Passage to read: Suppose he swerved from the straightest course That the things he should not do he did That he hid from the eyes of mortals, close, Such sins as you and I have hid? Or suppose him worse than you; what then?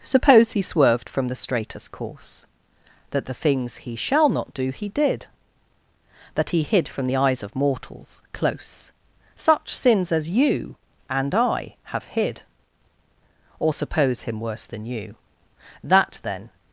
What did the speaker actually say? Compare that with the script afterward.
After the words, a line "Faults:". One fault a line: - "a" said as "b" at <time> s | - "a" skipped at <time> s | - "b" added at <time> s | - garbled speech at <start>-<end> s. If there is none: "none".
Suppose he swerved from the straightest course That the things he shall not do he did That he hid from the eyes of mortals, close, Such sins as you and I have hid? Or suppose him worse than you; that then?
Faults:
- "should" said as "shall" at 4.0 s
- "what" said as "that" at 15.8 s